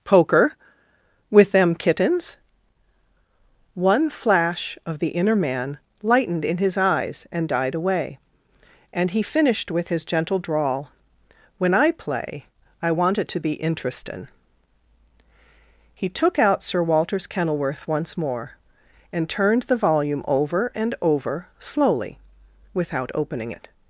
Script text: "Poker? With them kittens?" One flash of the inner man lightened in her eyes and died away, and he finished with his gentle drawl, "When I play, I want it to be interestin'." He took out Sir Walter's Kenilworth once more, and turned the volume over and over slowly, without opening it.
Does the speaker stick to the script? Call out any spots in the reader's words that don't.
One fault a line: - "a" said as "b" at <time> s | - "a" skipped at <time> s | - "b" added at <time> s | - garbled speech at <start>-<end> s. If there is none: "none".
- "her" said as "his" at 6.6 s